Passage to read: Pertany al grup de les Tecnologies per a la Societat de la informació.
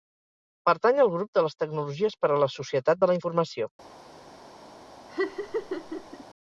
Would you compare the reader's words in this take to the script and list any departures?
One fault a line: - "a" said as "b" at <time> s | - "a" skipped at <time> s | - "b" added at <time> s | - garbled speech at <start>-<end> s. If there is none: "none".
none